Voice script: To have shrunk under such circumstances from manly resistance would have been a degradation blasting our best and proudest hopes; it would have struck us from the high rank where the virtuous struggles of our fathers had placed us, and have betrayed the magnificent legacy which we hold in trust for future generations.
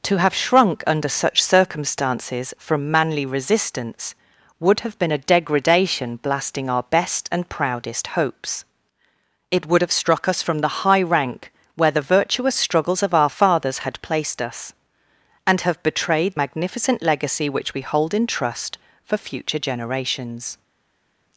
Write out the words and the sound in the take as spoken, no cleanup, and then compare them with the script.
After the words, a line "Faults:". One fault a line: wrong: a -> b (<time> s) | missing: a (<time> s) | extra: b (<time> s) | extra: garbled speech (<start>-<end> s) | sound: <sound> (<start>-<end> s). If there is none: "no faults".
To have shrunk under such circumstances from manly resistance would have been a degradation blasting our best and proudest hopes; it would have struck us from the high rank where the virtuous struggles of our fathers had placed us, and have betrayed magnificent legacy which we hold in trust for future generations.
Faults:
missing: the (16.4 s)